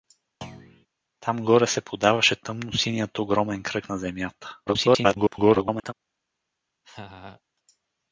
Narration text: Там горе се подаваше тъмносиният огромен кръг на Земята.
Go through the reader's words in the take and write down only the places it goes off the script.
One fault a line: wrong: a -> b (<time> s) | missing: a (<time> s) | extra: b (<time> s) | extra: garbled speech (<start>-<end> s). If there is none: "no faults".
extra: garbled speech (4.7-5.9 s)